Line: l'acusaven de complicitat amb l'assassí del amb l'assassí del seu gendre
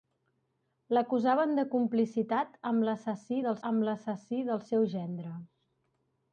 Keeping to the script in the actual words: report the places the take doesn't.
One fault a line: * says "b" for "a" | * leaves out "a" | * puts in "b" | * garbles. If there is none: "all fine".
all fine